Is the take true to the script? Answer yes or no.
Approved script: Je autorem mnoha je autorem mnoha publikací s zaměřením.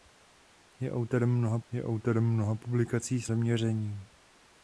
yes